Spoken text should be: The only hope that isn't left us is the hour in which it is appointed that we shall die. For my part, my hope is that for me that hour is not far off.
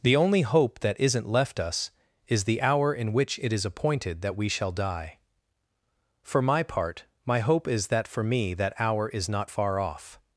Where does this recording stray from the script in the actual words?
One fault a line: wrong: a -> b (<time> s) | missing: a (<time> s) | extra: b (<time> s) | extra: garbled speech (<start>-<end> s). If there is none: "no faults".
no faults